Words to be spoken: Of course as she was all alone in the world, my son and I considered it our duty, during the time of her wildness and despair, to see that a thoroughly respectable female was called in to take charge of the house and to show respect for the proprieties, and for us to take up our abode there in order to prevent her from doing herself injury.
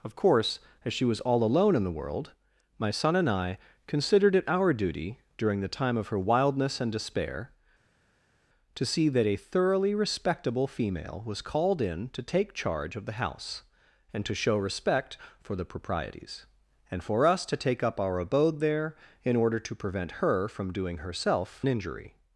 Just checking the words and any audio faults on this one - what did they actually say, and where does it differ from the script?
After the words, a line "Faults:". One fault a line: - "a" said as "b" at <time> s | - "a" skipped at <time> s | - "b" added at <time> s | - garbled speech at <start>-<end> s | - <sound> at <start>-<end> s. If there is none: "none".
Of course as she was all alone in the world, my son and I considered it our duty, during the time of her wildness and despair, to see that a thoroughly respectable female was called in to take charge of the house and to show respect for the proprieties, and for us to take up our abode there in order to prevent her from doing herself injury.
Faults:
none